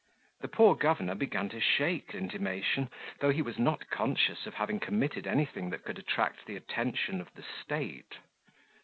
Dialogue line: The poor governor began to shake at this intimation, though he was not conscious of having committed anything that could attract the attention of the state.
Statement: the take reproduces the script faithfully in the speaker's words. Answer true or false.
false